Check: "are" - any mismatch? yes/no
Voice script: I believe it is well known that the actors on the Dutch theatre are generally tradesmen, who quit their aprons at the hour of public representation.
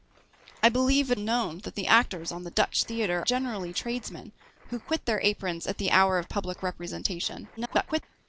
yes